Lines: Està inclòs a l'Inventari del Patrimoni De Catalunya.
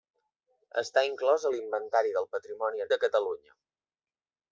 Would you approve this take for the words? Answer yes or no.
yes